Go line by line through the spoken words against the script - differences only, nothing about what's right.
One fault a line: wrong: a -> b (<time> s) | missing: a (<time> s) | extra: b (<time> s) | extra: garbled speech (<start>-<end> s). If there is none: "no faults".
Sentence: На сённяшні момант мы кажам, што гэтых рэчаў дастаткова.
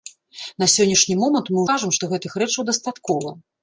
no faults